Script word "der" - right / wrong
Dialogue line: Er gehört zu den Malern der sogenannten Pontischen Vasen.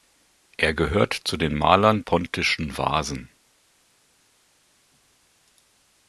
wrong